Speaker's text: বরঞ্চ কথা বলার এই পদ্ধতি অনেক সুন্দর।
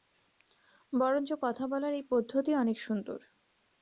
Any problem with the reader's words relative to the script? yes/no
no